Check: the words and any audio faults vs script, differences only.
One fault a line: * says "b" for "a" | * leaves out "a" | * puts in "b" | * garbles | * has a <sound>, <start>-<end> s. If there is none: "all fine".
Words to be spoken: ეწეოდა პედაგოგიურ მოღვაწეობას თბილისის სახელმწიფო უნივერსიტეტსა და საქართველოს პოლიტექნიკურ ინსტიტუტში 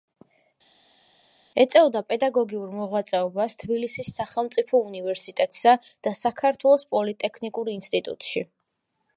all fine